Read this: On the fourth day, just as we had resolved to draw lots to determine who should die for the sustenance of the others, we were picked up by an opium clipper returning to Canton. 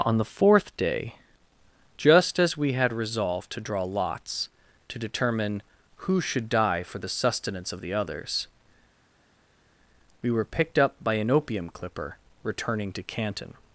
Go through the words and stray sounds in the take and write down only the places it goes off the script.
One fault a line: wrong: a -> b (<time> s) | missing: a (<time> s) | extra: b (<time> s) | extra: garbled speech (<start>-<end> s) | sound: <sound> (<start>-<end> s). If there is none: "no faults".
no faults